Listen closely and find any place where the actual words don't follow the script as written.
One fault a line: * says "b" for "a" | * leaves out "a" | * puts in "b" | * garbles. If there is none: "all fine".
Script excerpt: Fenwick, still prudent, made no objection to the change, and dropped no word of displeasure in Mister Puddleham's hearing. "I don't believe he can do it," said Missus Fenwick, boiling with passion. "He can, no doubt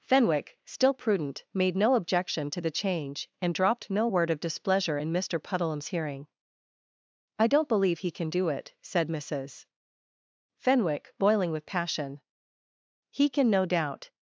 all fine